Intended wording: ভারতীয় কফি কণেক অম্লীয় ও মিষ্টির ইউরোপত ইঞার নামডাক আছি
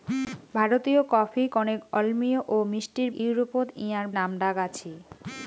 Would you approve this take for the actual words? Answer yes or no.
yes